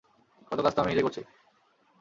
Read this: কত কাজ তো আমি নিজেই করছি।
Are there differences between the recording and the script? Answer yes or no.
no